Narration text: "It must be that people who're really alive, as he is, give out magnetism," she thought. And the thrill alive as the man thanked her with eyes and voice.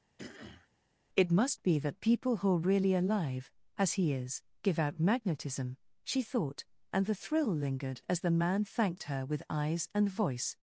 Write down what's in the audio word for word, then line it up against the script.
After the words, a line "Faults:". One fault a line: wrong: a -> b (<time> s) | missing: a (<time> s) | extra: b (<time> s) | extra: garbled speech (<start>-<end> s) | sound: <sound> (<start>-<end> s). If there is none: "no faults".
"It must be that people who're really alive, as he is, give out magnetism," she thought. And the thrill lingered as the man thanked her with eyes and voice.
Faults:
sound: throat clearing (0.2-0.7 s)
wrong: alive -> lingered (7.5 s)